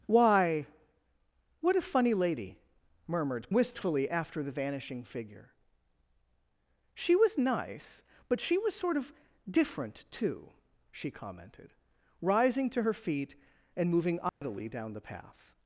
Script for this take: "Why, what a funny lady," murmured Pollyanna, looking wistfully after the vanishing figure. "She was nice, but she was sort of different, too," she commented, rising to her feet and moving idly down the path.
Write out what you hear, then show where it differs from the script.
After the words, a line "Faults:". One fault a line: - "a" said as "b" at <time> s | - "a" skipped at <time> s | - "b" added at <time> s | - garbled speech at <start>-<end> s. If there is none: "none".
"Why, what a funny lady," murmured Wistfully after the vanishing figure. "She was nice, but she was sort of different, too," she commented, rising to her feet and moving idly down the path.
Faults:
- "Pollyanna looking" skipped at 3.5 s